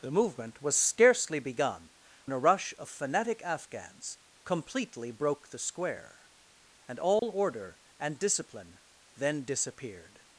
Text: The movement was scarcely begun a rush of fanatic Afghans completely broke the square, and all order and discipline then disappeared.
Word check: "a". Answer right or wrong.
right